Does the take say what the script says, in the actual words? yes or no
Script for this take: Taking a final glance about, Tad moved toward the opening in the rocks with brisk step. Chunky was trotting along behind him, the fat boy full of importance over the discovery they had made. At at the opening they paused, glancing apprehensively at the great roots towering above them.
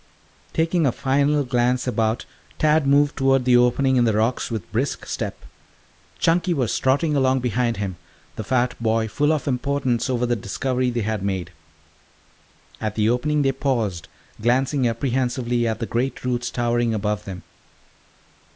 no